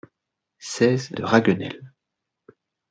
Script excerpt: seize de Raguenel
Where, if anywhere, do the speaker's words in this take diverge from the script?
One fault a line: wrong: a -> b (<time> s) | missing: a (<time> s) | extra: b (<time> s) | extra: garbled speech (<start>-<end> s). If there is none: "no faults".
no faults